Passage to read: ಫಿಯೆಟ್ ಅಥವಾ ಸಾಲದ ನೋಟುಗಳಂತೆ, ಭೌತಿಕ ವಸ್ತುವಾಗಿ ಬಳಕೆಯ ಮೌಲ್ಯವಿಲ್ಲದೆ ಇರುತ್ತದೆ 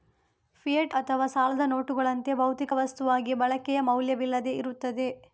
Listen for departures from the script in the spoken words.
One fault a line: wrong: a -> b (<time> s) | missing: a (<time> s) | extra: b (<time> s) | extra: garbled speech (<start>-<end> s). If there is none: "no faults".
no faults